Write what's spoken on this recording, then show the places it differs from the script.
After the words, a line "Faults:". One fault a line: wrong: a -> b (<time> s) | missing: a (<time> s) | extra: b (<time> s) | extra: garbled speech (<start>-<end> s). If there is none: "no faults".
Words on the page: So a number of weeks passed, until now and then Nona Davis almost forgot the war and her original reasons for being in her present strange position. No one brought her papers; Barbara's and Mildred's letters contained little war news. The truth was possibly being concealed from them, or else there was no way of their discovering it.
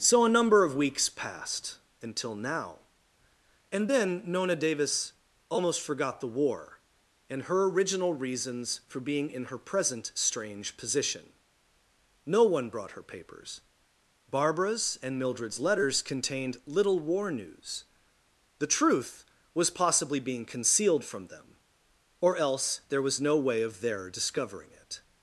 So a number of weeks passed, until now and then Nona Davis almost forgot the war and her original reasons for being in her present strange position. No one brought her papers; Barbara's and Mildred's letters contained little war news. The truth was possibly being concealed from them, or else there was no way of their discovering it.
Faults:
no faults